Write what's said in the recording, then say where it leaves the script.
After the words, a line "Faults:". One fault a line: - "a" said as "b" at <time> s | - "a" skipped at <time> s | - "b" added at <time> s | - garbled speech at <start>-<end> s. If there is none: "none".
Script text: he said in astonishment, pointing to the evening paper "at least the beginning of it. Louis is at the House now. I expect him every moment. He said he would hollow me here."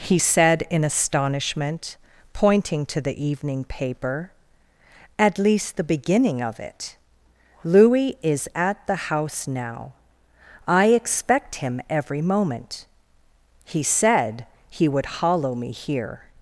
he said in astonishment, pointing to the evening paper "at least the beginning of it. Louis is at the House now. I expect him every moment. He said he would hollow me here."
Faults:
none